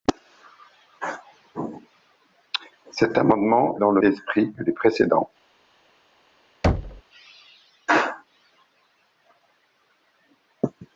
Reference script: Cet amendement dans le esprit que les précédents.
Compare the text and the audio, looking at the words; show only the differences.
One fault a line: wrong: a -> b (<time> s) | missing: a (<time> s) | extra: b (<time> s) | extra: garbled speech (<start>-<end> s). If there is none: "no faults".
no faults